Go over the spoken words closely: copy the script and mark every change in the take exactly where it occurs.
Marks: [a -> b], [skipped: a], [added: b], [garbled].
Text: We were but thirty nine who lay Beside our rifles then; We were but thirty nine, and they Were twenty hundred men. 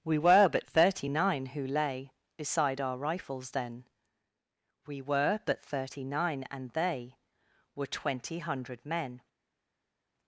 We were but thirty nine who lay Beside our rifles then; We were but thirty nine, and they Were twenty hundred men.